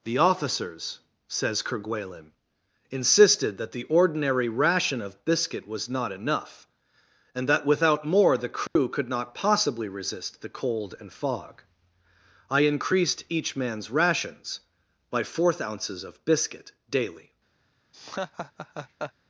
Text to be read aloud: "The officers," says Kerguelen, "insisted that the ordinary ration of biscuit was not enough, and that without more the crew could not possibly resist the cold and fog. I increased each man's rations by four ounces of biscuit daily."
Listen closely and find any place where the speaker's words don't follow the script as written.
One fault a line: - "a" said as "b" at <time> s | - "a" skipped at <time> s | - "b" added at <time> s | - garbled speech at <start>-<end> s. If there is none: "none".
- "four" said as "fourth" at 15.2 s